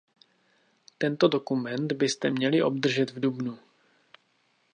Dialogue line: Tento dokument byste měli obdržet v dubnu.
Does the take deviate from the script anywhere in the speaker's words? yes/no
no